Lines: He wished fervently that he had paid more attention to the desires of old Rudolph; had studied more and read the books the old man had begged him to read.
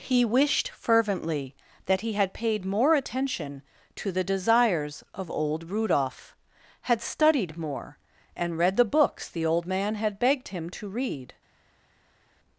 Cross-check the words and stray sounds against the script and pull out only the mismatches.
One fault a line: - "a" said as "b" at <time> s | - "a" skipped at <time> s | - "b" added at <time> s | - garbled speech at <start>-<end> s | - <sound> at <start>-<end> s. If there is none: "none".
none